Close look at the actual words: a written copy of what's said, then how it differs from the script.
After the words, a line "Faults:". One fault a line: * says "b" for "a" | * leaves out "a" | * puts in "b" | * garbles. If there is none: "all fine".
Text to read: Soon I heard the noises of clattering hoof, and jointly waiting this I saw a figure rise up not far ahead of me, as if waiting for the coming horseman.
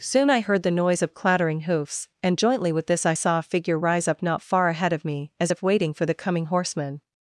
Soon I heard the noise of clattering hoofs, and jointly with this I saw a figure rise up not far ahead of me, as if waiting for the coming horseman.
Faults:
* says "noise" for "noises"
* says "hoofs" for "hoof"
* says "with" for "waiting"